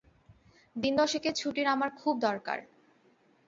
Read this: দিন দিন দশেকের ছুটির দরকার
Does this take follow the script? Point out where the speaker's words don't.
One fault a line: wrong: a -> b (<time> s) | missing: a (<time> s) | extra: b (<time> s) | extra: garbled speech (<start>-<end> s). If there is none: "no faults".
missing: দিন (0.9 s)
extra: আমার খুব (1.7 s)